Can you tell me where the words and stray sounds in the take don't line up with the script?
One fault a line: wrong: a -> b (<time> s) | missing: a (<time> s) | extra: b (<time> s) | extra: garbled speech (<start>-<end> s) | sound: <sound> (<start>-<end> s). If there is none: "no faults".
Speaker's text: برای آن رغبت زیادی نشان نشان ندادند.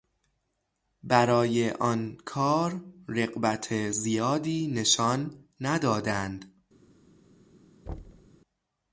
extra: کار (2.2 s)
missing: نشان (5.5 s)
sound: thud (7.9-8.3 s)